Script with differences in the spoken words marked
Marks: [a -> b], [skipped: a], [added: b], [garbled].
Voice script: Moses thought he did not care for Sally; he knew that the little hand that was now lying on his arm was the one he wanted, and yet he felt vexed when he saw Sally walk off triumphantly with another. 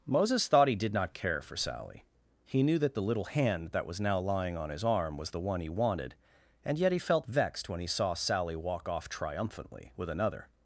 Moses thought he did not care for Sally; he knew that the little hand that was now lying on his arm was the one he wanted, and yet he felt vexed when he saw Sally walk off triumphantly with another.